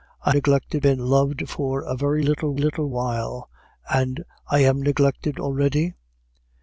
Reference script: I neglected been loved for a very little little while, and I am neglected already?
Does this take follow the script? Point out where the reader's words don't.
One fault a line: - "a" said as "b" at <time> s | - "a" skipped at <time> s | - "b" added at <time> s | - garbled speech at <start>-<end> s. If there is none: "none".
none